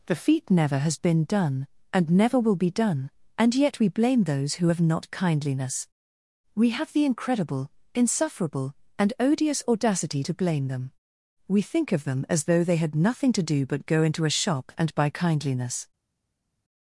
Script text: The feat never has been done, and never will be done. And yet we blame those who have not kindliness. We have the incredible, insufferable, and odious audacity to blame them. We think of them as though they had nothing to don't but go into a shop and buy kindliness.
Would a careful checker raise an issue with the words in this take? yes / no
yes